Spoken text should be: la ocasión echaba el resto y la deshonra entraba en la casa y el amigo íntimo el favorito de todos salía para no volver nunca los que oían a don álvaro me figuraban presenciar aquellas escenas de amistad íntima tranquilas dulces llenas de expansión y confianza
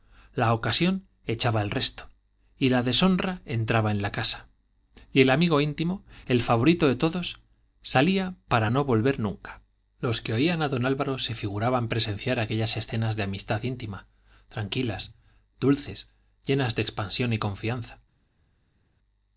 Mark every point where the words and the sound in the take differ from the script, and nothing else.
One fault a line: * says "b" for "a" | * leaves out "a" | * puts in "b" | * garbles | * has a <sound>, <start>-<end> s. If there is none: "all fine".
* says "se" for "me"